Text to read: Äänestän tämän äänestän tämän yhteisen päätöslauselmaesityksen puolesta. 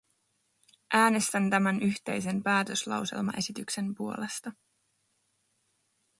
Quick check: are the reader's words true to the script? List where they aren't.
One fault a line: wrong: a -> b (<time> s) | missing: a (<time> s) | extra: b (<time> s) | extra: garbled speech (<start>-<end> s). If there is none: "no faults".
missing: äänestän tämän (1.8 s)